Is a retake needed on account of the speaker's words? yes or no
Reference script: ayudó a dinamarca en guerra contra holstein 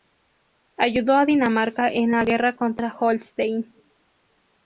yes